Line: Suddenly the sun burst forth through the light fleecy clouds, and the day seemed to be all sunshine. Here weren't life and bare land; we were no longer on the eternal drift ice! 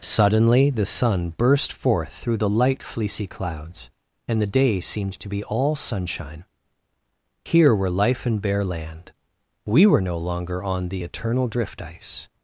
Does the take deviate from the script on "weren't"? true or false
true